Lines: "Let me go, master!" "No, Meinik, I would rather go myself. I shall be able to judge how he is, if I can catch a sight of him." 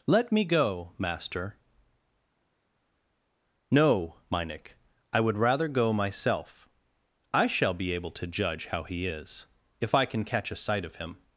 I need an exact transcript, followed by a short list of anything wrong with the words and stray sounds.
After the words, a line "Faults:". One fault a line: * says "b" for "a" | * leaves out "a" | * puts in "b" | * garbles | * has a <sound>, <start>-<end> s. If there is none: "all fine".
"Let me go, master!" "No, Meinik, I would rather go myself. I shall be able to judge how he is, if I can catch a sight of him."
Faults:
all fine